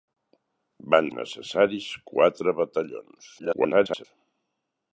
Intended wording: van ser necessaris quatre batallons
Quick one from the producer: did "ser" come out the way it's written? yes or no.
no